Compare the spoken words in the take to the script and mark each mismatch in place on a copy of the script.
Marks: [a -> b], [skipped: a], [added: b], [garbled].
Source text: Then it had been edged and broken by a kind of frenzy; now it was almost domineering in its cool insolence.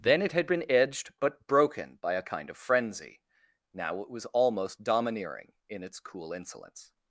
Then it had been edged [and -> but] broken by a kind of frenzy; now it was almost domineering in its cool insolence.